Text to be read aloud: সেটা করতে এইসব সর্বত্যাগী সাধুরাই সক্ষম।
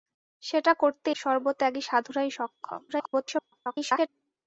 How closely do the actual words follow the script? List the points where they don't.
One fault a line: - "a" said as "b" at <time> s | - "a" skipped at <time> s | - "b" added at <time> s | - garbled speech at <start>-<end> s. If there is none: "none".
- "এইসব" skipped at 1.1 s
- garbled speech at 2.9-4.1 s